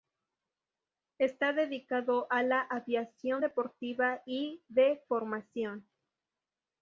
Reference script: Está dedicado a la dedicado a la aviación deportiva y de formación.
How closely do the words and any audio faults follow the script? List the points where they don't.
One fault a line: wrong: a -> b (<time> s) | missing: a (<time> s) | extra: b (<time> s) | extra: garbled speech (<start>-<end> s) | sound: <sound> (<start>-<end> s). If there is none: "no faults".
missing: dedicado a la (2.6 s)